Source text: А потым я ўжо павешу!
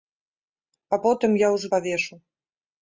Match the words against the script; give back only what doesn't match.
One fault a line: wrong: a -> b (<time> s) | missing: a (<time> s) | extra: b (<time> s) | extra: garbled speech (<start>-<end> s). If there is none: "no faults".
no faults